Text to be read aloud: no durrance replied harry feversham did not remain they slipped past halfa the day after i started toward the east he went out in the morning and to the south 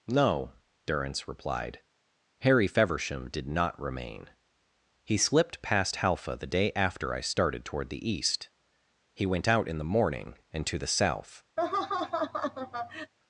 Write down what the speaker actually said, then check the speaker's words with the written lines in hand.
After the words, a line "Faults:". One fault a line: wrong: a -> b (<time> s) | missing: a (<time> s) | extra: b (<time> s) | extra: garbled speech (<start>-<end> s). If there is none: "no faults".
no durrance replied harry feversham did not remain he slipped past halfa the day after i started toward the east he went out in the morning and to the south
Faults:
wrong: they -> he (5.0 s)